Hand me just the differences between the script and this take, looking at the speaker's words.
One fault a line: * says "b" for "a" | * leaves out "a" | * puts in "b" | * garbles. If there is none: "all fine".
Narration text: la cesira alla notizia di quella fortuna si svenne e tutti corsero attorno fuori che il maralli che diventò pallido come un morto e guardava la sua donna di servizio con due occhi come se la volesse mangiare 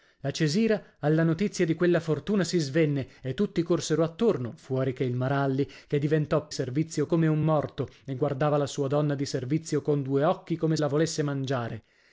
* says "servizio" for "pallido"
* leaves out "se"